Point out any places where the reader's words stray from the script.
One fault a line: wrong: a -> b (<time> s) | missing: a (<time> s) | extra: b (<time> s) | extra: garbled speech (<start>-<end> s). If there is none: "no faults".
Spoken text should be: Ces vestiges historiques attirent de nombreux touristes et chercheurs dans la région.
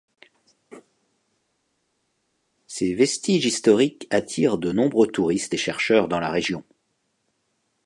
no faults